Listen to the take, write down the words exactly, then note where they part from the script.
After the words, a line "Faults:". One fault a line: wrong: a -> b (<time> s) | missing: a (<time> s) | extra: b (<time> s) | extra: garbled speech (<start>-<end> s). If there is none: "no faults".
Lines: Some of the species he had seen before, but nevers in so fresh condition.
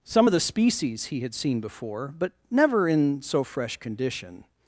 Some of the species he had seen before, but never in so fresh condition.
Faults:
wrong: nevers -> never (2.5 s)